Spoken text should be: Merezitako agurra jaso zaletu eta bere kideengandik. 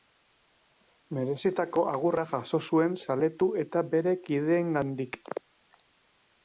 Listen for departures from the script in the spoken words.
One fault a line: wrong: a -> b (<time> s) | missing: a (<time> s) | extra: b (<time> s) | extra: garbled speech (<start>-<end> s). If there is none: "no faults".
extra: zuen (2.7 s)